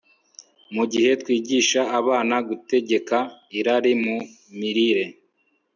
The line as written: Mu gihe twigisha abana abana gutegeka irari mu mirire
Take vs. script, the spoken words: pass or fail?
fail